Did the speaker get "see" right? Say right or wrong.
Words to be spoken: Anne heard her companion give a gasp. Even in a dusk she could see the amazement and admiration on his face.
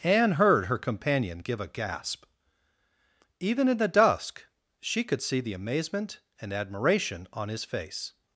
right